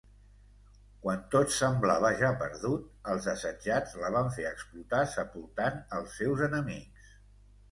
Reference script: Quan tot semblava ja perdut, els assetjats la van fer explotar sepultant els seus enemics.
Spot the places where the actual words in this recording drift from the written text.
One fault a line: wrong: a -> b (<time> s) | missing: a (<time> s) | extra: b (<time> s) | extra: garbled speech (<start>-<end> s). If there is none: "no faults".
no faults